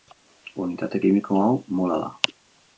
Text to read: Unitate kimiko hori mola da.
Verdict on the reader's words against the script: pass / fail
fail